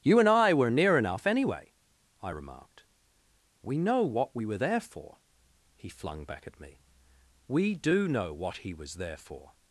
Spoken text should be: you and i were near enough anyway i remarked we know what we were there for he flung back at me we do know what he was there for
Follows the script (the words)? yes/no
yes